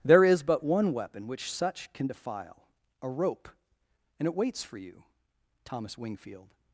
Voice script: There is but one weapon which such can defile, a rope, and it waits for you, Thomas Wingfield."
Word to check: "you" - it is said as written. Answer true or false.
true